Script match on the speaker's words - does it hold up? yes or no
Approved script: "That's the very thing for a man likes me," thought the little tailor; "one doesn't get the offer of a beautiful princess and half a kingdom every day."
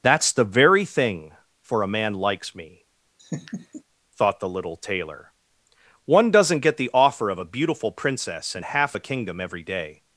yes